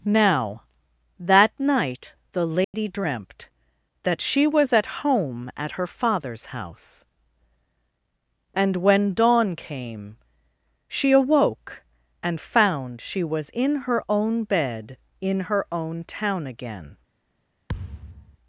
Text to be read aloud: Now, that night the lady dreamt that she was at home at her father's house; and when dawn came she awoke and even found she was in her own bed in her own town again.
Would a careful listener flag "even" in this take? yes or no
yes